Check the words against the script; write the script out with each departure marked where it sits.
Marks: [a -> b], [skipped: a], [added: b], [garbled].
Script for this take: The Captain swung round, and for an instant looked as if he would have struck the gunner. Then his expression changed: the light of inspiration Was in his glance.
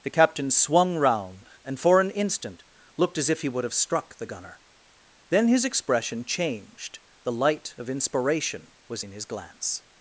The Captain swung round, and for an instant looked as if he would have struck the gunner. Then his expression changed: the light of inspiration Was in his glance.